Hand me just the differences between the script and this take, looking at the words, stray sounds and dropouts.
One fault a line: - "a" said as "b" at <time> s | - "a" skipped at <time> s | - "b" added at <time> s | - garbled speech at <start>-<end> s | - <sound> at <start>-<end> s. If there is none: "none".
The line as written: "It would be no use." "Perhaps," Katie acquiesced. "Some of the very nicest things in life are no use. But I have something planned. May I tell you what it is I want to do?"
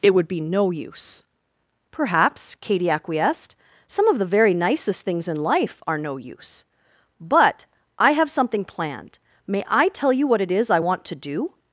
none